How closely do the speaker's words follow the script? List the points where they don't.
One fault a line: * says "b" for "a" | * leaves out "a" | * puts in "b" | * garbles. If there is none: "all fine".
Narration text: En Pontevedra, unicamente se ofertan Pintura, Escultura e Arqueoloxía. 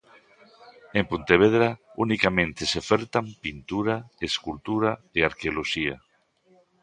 all fine